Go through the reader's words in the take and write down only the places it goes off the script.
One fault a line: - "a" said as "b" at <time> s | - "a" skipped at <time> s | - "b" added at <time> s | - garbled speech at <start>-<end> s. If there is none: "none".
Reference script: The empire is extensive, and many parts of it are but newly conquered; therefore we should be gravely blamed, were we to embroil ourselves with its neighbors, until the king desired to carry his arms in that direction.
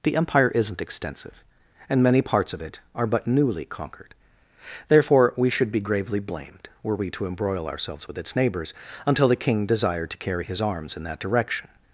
- "is" said as "isn't" at 0.6 s